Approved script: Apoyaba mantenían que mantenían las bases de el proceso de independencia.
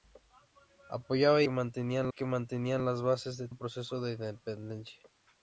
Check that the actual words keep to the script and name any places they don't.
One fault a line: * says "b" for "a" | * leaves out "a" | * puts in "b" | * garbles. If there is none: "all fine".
all fine